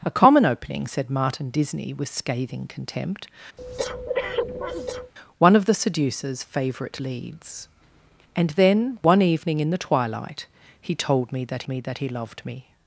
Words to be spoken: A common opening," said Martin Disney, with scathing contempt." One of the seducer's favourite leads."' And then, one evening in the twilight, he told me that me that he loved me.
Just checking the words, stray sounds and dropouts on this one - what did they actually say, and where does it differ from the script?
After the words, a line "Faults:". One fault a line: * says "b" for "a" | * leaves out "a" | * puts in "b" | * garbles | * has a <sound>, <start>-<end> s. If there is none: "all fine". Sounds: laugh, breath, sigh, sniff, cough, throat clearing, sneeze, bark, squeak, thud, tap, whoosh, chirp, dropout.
A common opening," said Martin Disney, with scathing contempt." One of the seducer's favourite leads."' And then, one evening in the twilight, he told me that me that he loved me.
Faults:
* has a breath, 3.6-5.1 s